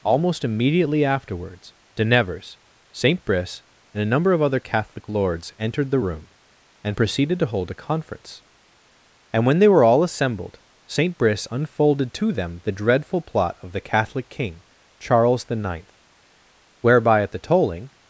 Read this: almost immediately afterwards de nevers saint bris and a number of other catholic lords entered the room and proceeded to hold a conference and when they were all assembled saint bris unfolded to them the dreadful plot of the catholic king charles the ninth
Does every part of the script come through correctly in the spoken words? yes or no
no